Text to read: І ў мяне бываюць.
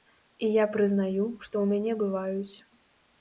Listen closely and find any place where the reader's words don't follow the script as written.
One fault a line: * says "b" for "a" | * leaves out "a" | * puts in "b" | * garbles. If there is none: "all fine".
* puts in "я прызнаю што"